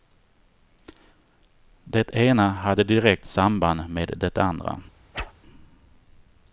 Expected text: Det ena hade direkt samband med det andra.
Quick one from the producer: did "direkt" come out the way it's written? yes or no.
yes